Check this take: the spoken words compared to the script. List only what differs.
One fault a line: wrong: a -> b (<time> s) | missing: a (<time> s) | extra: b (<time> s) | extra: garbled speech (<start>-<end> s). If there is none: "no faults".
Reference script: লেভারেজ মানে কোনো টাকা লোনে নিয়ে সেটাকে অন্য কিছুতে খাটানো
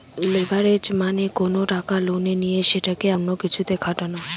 no faults